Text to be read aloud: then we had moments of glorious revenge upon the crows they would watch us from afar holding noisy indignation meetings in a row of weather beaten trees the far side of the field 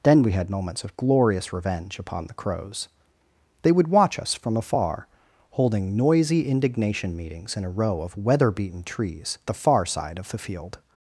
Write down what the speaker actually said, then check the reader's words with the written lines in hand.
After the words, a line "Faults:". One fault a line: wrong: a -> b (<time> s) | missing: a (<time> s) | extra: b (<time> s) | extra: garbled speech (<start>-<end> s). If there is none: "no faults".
then we had moments of glorious revenge upon the crows they would watch us from afar holding noisy indignation meetings in a row of weather beaten trees the far side of the field
Faults:
no faults